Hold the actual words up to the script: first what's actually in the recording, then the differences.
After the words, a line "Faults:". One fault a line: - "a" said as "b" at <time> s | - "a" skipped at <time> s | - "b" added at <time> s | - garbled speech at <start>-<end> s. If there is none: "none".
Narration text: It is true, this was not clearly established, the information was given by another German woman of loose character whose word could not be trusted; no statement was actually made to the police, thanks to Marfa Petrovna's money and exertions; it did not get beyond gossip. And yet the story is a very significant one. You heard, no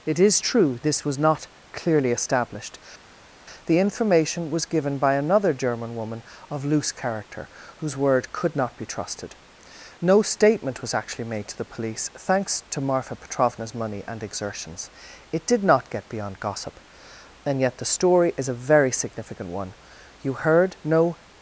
It is true, this was not clearly established, the information was given by another German woman of loose character whose word could not be trusted; no statement was actually made to the police, thanks to Marfa Petrovna's money and exertions; it did not get beyond gossip. And yet the story is a very significant one. You heard, no
Faults:
none